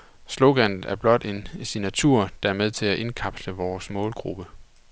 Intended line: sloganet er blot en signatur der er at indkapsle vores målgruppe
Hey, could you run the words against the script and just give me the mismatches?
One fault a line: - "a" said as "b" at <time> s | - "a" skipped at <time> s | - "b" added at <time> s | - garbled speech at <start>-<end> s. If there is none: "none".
- "med til" added at 2.5 s